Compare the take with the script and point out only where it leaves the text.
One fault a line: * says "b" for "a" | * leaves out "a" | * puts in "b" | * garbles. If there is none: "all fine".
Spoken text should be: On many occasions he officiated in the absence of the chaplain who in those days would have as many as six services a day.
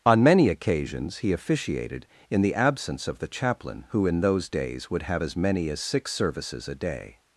all fine